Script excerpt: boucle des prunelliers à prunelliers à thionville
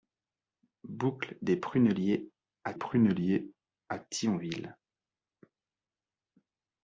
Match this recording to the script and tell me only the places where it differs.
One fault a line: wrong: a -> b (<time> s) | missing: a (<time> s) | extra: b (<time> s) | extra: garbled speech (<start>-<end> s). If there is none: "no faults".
no faults